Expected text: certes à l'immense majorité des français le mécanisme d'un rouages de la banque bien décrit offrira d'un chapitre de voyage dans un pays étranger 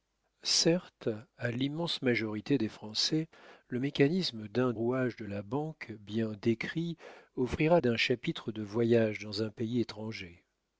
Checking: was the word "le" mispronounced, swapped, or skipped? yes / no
no